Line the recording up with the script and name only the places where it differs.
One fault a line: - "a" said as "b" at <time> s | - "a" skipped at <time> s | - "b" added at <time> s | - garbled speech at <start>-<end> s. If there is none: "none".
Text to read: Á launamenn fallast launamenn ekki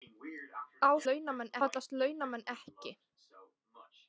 none